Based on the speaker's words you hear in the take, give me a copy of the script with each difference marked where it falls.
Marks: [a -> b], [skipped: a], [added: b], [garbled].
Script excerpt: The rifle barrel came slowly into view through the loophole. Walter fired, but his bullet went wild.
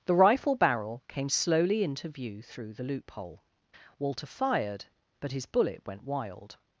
The rifle barrel came slowly into view through the loophole. Walter fired, but his bullet went wild.